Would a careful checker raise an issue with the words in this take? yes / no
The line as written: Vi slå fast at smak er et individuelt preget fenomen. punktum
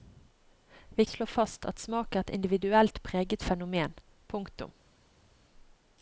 no